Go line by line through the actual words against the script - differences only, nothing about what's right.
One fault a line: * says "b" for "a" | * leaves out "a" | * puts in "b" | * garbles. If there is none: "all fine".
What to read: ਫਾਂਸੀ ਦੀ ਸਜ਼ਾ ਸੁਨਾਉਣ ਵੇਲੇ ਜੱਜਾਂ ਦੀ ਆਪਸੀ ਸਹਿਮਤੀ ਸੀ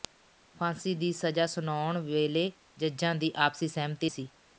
all fine